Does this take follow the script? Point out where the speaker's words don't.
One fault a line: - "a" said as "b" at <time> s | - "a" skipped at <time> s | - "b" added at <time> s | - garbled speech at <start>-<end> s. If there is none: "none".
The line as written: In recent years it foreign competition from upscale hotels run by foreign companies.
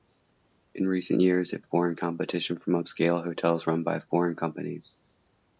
none